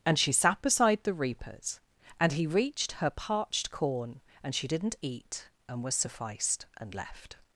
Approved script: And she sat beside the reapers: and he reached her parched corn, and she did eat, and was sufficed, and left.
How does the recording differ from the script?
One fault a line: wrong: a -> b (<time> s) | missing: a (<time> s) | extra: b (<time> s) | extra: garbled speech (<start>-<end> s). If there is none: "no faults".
wrong: did -> didn't (4.7 s)